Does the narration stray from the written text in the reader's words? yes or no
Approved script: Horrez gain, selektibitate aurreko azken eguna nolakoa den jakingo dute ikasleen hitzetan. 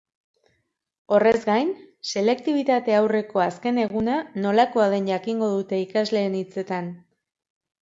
no